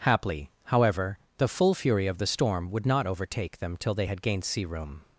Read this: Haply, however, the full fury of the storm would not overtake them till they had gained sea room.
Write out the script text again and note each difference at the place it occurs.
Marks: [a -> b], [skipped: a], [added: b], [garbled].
Haply, however, the full fury of the storm would not overtake them till they had gained sea room.